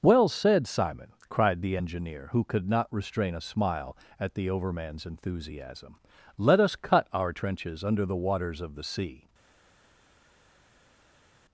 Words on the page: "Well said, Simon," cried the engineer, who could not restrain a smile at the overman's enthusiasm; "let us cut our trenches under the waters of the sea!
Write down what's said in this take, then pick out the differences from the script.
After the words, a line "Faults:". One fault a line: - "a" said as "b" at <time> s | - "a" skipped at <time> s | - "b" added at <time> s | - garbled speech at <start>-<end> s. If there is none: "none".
"Well said, Simon," cried the engineer, who could not restrain a smile at the overman's enthusiasm; "let us cut our trenches under the waters of the sea!
Faults:
none